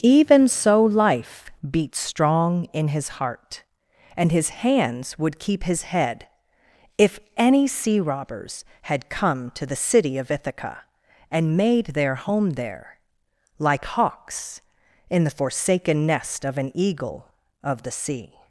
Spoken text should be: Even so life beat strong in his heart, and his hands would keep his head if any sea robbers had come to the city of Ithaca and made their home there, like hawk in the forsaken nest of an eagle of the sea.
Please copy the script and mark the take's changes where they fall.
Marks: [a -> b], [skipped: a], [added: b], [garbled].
Even so life beat strong in his heart, and his hands would keep his head if any sea robbers had come to the city of Ithaca and made their home there, like [hawk -> hawks] in the forsaken nest of an eagle of the sea.